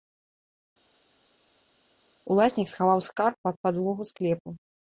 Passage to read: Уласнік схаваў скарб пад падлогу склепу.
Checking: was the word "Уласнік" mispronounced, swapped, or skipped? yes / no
no